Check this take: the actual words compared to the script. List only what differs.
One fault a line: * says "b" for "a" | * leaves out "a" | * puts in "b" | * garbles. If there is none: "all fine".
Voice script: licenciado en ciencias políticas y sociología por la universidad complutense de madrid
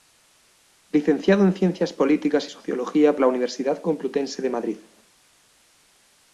* leaves out "por"